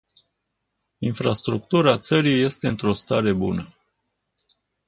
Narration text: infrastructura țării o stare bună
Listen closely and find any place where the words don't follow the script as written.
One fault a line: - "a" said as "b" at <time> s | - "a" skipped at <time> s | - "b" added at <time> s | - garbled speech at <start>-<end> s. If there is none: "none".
- "este într" added at 2.4 s